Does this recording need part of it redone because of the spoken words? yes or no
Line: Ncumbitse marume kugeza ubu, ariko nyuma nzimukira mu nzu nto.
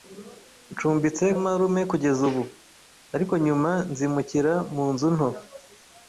no